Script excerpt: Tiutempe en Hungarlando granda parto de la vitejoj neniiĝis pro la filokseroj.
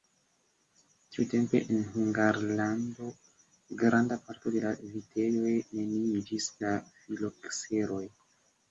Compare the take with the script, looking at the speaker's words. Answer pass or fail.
fail